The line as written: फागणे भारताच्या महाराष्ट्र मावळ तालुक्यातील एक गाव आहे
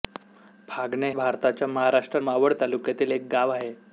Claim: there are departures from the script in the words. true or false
false